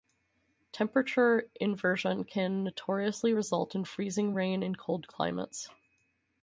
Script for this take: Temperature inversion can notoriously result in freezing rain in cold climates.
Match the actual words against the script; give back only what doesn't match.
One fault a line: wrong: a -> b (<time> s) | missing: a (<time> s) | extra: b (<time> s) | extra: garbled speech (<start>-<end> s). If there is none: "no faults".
no faults